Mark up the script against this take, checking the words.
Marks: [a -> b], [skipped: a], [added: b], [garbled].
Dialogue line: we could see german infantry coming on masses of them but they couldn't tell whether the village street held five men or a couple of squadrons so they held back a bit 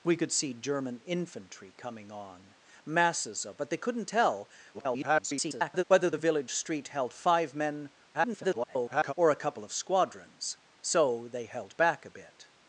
we could see german infantry coming on masses of [skipped: them] but they couldn't tell [garbled] whether the village street held five men [garbled] or a couple of squadrons so they held back a bit